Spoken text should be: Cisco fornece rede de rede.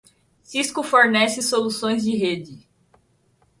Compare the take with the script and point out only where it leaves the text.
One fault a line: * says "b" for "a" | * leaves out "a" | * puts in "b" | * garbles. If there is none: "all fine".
* says "soluções" for "rede"